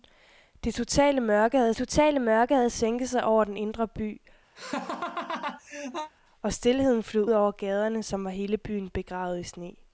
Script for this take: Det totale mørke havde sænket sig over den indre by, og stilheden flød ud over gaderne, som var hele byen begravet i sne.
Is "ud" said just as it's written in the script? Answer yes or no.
no